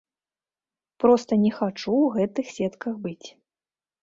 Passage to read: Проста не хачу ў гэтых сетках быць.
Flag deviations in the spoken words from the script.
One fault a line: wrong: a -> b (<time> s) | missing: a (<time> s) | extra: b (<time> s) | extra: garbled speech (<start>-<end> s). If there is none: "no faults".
no faults